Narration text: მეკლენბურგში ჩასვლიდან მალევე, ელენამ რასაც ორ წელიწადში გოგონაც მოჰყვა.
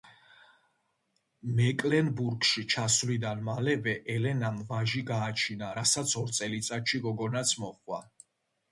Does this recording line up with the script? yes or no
no